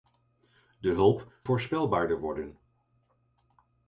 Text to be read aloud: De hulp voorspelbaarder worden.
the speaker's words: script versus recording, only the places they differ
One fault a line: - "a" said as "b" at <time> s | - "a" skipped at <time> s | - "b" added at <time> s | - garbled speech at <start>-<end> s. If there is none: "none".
none